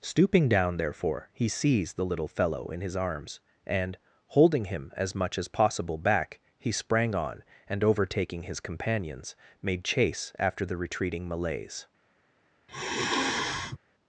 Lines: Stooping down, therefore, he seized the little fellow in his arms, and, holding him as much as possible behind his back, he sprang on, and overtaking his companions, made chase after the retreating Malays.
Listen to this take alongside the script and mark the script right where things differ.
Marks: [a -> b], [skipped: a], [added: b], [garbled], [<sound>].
Stooping down, therefore, he seized the little fellow in his arms, and, holding him as much as possible [skipped: behind his] back, he sprang on, and overtaking his companions, made chase after the retreating Malays. [sigh]